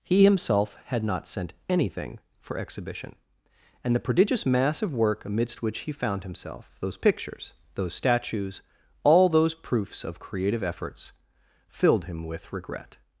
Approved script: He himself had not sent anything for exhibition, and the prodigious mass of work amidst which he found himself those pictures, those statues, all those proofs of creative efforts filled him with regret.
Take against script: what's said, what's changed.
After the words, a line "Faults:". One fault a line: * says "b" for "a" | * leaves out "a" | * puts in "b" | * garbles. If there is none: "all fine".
He himself had not sent anything for exhibition, and the prodigious mass of work amidst which he found himself those pictures, those statues, all those proofs of creative efforts filled him with regret.
Faults:
all fine